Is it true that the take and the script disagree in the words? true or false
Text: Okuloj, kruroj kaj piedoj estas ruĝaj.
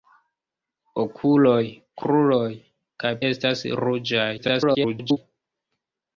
true